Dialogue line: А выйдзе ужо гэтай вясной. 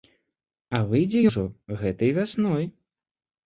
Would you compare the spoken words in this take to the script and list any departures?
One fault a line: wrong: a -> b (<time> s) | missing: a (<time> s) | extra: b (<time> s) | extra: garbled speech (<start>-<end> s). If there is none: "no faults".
no faults